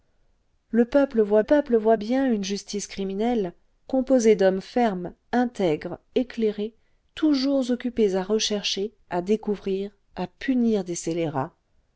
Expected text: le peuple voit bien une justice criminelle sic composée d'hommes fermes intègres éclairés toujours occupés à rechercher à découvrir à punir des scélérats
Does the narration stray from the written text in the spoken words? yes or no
yes